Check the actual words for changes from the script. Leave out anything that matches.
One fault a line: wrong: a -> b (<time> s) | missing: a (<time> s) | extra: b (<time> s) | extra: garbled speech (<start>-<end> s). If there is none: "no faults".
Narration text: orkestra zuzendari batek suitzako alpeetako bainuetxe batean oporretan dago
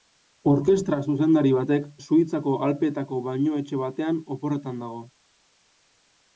no faults